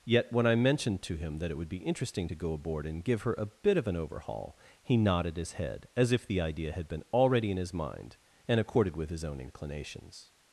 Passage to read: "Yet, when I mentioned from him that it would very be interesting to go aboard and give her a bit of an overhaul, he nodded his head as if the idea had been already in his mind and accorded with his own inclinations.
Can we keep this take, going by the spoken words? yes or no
no